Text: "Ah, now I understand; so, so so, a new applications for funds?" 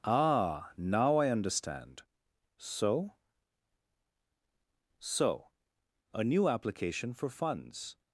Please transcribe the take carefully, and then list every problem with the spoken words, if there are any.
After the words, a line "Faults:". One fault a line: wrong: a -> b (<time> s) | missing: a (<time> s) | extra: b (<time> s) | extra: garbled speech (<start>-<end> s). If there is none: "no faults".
"Ah, now I understand; so, so, a new application for funds?"
Faults:
missing: so (5.5 s)
wrong: applications -> application (6.5 s)